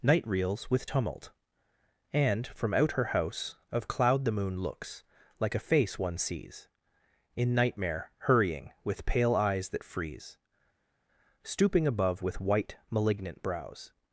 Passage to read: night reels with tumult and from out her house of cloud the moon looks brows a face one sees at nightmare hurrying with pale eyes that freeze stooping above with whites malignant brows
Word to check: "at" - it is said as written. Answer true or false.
false